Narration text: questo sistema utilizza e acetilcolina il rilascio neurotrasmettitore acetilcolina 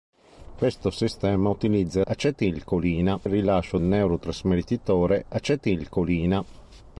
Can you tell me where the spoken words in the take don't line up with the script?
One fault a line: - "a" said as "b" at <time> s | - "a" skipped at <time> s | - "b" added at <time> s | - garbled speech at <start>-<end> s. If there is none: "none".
none